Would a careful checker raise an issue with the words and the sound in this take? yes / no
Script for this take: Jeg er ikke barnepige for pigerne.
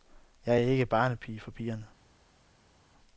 no